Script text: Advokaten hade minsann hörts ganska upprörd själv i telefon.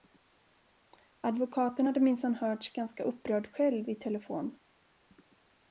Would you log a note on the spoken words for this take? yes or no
no